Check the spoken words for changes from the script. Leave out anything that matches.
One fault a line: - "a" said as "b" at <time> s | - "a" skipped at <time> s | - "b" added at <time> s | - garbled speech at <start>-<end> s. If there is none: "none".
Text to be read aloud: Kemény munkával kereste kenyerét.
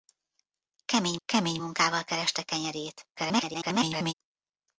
- "kemény" added at 1.2 s
- garbled speech at 3.1-4.1 s